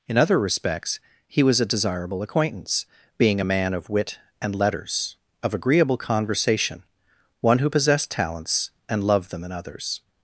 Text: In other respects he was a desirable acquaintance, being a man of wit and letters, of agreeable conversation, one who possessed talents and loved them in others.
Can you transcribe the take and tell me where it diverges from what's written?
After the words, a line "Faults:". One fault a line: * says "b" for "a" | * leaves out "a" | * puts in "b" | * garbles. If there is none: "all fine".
In other respects he was a desirable acquaintance, being a man of wit and letters, of agreeable conversation, one who possessed talents and loved them in others.
Faults:
all fine